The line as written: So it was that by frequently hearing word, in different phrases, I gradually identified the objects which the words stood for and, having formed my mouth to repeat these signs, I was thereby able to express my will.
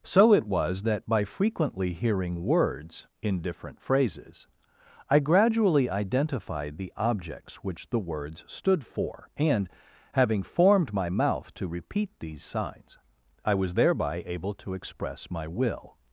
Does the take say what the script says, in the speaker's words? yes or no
no